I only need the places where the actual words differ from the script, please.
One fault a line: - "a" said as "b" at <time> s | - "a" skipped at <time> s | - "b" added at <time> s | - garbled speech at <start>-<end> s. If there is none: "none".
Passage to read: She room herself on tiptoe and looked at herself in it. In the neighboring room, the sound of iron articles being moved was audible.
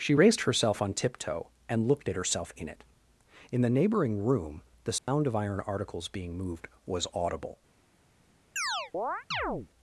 - "room" said as "raised" at 0.1 s